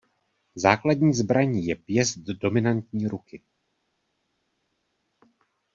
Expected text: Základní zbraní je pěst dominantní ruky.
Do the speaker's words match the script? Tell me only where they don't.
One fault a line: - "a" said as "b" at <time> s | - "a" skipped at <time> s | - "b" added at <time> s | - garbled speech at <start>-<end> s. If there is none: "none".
none